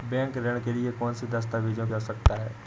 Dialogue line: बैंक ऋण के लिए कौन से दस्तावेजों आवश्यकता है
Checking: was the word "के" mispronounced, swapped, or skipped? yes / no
no